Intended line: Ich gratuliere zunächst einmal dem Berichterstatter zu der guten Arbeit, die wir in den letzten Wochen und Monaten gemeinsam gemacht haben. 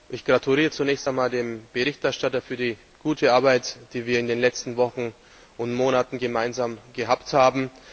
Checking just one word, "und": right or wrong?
right